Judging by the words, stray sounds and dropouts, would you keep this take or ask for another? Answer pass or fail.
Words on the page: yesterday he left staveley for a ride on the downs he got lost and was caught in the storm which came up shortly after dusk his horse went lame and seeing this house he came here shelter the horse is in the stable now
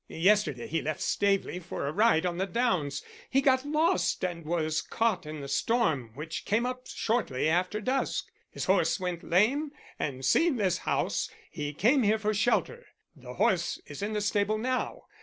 fail